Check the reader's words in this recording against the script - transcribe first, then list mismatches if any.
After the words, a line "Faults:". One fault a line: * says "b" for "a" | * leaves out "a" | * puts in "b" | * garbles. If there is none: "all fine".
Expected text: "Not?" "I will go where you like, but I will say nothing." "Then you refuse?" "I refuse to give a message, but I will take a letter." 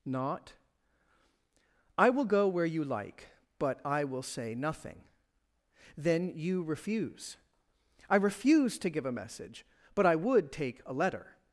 "Not?" "I will go where you like, but I will say nothing." "Then you refuse?" "I refuse to give a message, but I would take a letter."
Faults:
* says "would" for "will"